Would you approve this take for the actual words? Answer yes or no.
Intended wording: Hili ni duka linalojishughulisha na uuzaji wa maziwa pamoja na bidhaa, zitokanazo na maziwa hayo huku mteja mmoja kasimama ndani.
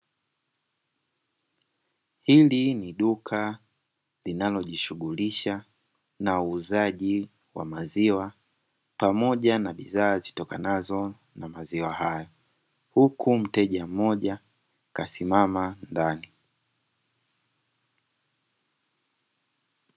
yes